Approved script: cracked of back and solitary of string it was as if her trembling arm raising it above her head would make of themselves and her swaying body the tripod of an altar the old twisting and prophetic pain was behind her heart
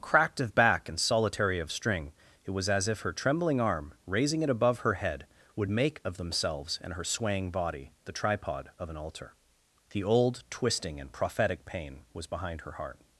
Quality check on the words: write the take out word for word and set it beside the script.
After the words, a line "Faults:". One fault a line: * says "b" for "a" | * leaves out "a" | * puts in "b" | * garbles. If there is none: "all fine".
cracked of back and solitary of string it was as if her trembling arm raising it above her head would make of themselves and her swaying body the tripod of an altar the old twisting and prophetic pain was behind her heart
Faults:
all fine